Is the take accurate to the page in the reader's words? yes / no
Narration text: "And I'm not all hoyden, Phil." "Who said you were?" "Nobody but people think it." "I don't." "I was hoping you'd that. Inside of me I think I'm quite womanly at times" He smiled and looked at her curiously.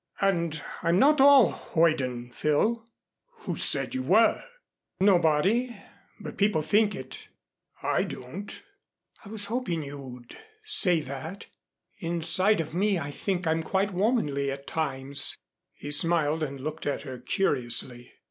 no